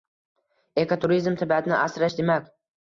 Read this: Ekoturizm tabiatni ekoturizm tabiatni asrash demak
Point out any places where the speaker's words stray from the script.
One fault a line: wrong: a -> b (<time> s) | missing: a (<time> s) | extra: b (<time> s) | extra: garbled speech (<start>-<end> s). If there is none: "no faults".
missing: ekoturizm tabiatni (1.8 s)